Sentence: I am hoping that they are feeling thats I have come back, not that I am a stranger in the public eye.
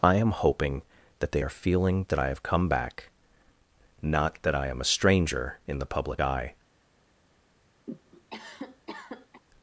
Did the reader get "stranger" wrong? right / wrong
right